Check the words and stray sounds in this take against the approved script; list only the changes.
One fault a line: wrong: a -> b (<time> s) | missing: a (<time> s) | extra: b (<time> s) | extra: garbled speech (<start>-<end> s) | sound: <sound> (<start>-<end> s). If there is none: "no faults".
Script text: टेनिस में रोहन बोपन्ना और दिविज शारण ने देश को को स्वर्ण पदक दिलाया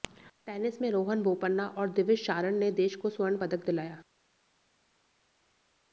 missing: को (3.1 s)